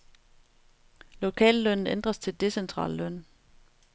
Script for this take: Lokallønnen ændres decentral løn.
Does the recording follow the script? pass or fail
fail